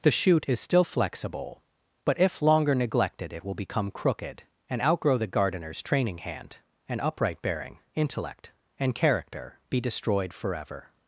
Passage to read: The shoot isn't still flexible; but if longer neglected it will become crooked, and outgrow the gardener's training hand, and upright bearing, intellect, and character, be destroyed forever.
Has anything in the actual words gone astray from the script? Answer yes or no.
yes